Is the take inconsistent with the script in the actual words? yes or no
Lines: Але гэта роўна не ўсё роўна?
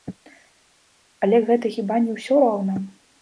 yes